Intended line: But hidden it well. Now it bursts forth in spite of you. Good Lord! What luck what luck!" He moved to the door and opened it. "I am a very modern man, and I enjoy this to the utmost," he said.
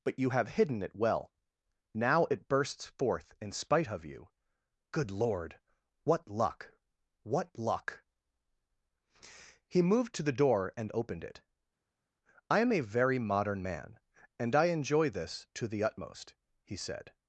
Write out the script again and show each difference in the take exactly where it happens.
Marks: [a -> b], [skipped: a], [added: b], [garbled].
But [added: you have] hidden it well. Now it bursts forth in spite of you. Good Lord! What luck what luck!" He moved to the door and opened it. "I am a very modern man, and I enjoy this to the utmost," he said.